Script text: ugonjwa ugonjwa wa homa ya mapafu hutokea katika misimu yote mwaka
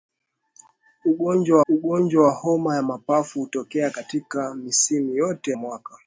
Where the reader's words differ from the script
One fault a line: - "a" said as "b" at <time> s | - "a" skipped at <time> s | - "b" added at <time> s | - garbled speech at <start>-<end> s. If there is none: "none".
none